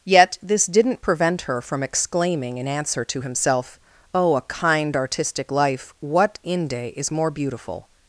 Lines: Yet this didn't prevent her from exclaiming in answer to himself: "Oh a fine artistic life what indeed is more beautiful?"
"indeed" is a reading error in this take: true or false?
true